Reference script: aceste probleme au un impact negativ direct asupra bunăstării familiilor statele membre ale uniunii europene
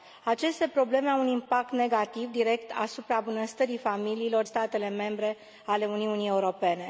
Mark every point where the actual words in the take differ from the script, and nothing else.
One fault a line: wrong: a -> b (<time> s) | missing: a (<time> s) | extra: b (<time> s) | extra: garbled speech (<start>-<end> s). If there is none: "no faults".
no faults